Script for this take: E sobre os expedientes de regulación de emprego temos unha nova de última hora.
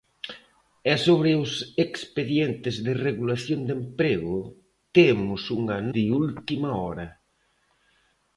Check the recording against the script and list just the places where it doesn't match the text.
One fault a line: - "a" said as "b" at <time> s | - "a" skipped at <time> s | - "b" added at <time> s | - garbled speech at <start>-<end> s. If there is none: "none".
- "nova" skipped at 5.8 s